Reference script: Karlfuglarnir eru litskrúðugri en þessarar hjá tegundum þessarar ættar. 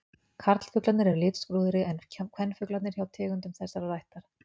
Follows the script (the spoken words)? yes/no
no